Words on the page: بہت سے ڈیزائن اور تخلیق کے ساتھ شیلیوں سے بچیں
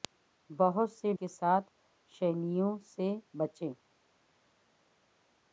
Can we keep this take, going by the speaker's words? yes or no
no